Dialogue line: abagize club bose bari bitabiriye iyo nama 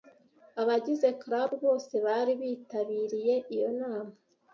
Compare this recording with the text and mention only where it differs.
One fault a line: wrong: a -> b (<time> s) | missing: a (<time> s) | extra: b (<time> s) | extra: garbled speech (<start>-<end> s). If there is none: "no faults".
no faults